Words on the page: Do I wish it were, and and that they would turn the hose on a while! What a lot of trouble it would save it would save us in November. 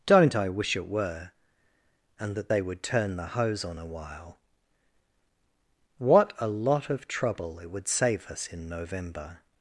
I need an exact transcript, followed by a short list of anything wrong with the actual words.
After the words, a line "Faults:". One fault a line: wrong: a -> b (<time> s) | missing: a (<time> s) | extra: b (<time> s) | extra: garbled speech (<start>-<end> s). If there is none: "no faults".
Don't I wish it were, and that they would turn the hose on a while! What a lot of trouble it would save us in November.
Faults:
wrong: Do -> Don't (0.1 s)
missing: and (2.4 s)
missing: it would save (8.3 s)